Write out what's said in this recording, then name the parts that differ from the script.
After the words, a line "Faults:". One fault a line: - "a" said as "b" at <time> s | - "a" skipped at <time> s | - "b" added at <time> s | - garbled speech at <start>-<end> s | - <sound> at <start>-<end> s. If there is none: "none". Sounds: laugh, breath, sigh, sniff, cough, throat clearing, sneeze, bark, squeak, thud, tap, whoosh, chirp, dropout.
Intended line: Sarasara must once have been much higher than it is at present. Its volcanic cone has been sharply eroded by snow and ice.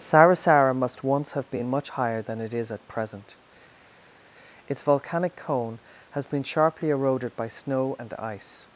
Sarasara must once have been much higher than it is at present. Its volcanic cone has been sharply eroded by snow and ice.
Faults:
none